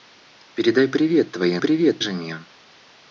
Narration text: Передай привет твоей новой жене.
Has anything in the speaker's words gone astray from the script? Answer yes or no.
yes